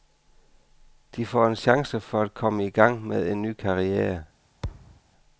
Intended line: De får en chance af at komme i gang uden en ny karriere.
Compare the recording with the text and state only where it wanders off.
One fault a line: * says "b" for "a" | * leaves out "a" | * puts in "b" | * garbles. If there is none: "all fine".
* says "for" for "af"
* says "med" for "uden"